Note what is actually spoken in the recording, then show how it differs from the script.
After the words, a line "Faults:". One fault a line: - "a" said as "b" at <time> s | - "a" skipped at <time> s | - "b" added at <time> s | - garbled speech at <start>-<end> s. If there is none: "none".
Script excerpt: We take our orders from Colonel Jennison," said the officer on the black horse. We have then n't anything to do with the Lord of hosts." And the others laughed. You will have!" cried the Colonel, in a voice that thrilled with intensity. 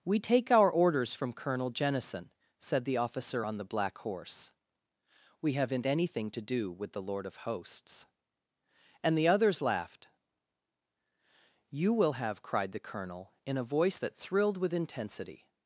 We take our orders from Colonel Jennison," said the officer on the black horse. We have n't anything to do with the Lord of hosts." And the others laughed. You will have!" cried the Colonel, in a voice that thrilled with intensity.
Faults:
- "then" skipped at 5.7 s